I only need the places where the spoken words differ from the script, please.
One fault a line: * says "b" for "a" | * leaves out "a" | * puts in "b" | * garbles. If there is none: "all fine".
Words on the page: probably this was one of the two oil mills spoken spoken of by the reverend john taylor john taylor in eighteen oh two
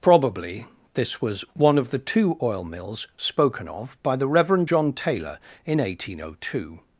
* leaves out "spoken"
* leaves out "john taylor"